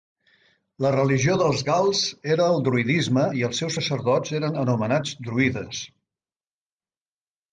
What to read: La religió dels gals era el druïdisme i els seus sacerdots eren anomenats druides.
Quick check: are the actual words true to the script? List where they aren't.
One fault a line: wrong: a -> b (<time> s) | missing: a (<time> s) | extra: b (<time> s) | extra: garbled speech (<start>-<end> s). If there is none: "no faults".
no faults